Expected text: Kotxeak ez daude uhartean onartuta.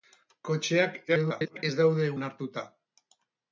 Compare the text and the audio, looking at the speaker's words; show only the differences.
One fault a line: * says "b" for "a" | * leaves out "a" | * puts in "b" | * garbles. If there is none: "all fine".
* garbles
* leaves out "uhartean"